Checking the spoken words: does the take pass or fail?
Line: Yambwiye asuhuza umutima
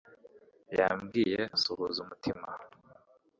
pass